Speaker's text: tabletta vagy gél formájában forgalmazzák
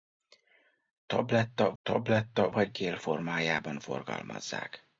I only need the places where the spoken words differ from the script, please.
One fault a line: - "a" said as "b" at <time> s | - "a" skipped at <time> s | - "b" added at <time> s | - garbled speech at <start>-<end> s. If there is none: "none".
- "tabletta" added at 1.8 s